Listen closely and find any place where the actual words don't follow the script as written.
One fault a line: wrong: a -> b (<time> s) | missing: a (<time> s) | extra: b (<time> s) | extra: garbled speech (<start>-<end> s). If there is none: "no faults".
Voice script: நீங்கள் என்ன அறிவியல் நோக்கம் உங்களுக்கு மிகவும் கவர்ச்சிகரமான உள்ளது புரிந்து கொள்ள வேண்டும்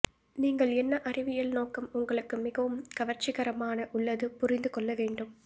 no faults